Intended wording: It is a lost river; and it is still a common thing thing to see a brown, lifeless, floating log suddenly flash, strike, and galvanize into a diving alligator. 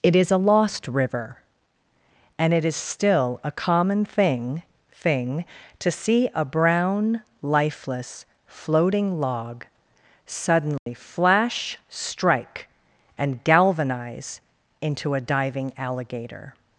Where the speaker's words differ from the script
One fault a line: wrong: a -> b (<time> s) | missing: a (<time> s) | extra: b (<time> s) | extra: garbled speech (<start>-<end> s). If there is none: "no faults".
no faults